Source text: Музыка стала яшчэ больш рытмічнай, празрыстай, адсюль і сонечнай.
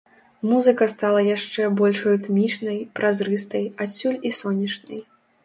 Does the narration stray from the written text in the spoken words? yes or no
no